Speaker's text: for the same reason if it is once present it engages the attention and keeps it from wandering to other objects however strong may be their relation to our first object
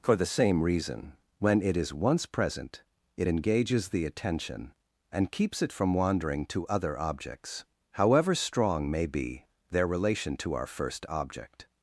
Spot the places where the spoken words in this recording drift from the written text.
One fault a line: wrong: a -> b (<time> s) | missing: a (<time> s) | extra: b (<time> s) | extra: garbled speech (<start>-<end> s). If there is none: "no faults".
wrong: if -> when (1.4 s)